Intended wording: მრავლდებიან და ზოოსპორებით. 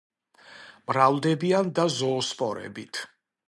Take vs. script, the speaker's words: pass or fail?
pass